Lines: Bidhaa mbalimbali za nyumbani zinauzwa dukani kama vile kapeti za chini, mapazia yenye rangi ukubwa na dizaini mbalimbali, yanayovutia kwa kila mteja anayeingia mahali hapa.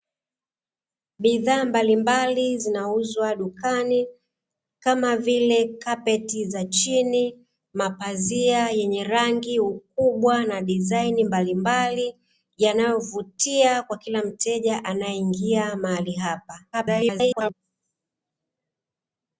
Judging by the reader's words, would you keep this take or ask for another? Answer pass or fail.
fail